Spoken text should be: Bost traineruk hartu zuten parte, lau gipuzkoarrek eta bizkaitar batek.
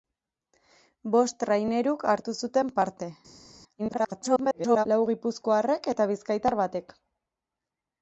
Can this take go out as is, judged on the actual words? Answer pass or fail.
fail